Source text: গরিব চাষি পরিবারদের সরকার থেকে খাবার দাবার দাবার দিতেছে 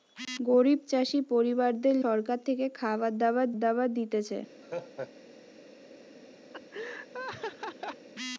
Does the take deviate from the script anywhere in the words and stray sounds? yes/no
yes